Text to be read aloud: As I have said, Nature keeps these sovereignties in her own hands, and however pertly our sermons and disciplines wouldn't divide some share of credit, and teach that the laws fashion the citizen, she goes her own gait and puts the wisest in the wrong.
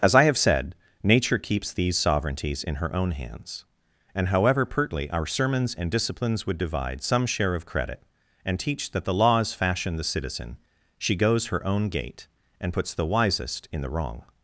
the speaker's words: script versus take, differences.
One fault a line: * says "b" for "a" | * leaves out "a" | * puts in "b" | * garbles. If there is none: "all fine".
* says "would" for "wouldn't"